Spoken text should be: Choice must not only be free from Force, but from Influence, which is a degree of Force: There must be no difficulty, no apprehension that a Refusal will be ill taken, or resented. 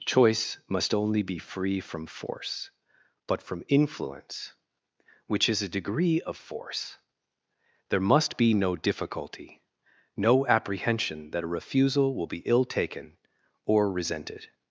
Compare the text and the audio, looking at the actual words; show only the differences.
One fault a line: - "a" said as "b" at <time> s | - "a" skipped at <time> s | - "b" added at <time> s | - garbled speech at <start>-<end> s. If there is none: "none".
- "not" skipped at 0.9 s